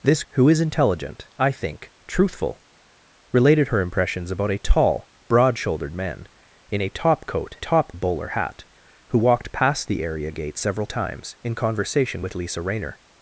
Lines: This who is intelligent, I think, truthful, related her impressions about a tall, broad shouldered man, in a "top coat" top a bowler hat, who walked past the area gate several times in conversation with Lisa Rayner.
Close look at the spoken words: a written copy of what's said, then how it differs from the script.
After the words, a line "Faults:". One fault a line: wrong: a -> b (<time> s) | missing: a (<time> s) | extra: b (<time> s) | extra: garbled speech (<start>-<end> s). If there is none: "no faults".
This who is intelligent, I think, truthful, related her impressions about a tall, broad shouldered man, in a "top coat" top a bowler hat, who walked past the area gate several times in conversation with Lisa Rayner.
Faults:
no faults